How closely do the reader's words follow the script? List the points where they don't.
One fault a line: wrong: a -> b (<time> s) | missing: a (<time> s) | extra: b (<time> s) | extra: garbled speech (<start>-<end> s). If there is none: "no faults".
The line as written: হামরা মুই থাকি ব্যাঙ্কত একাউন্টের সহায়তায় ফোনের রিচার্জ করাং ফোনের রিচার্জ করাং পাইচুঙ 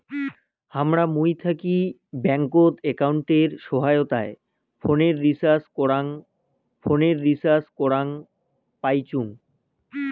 no faults